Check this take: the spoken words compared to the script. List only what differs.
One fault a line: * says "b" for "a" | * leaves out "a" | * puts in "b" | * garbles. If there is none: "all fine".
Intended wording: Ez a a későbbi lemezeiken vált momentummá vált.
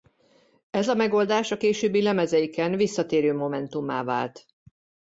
* puts in "megoldás"
* says "visszatérő" for "vált"